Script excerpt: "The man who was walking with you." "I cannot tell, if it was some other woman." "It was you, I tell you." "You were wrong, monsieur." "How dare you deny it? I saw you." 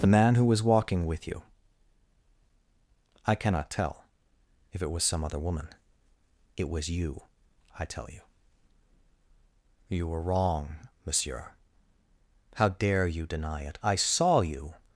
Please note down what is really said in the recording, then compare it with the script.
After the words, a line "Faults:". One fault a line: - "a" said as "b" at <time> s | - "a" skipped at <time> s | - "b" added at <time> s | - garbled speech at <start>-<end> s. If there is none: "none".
"The man who was walking with you." "I cannot tell, if it was some other woman." "It was you, I tell you." "You were wrong, monsieur." "How dare you deny it? I saw you."
Faults:
none